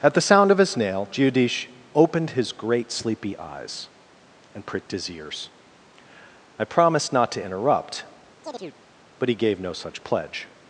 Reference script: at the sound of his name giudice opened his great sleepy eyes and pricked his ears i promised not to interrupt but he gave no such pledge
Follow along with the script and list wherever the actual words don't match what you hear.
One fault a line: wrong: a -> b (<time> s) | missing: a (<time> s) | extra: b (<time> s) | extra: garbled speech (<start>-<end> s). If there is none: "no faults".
wrong: name -> nail (0.8 s)